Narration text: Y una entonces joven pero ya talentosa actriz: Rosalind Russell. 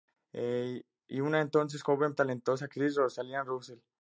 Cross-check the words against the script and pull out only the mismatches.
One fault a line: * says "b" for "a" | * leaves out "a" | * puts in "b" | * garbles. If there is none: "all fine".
* leaves out "pero ya"